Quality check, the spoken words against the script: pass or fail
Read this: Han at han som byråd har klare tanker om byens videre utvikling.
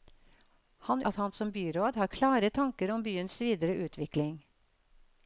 pass